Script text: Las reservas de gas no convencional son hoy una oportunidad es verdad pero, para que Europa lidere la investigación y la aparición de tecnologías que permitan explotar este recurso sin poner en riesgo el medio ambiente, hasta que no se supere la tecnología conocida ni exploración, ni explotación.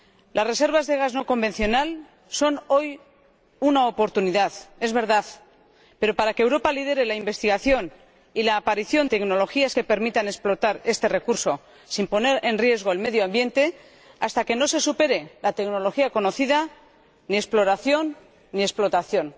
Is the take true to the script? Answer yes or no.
no